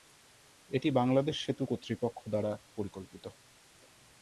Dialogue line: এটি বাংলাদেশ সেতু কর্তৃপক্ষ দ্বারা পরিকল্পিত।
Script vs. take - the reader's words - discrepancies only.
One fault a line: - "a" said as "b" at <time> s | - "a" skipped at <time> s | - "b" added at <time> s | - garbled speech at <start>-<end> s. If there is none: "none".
none